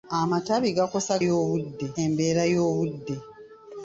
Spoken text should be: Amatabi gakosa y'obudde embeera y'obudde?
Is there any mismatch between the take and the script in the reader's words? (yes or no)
no